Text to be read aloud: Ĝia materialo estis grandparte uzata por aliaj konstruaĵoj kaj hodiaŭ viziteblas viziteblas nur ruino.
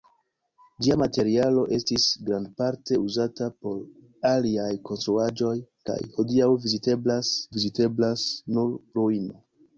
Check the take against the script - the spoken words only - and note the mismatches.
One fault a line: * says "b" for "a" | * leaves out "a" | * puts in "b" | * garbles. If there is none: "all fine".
all fine